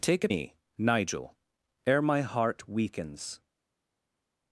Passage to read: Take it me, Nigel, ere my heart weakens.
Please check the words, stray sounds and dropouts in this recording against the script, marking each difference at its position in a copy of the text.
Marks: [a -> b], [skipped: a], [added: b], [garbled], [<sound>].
Take it me, Nigel, ere my heart weakens.